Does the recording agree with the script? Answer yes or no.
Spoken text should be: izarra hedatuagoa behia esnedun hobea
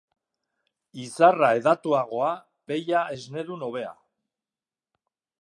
yes